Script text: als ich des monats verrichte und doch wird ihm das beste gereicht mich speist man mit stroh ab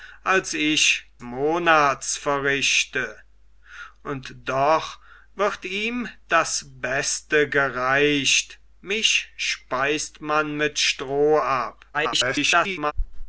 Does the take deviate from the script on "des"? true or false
true